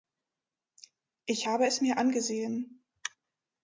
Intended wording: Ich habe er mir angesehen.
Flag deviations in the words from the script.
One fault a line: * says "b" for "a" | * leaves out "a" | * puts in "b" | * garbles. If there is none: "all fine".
* says "es" for "er"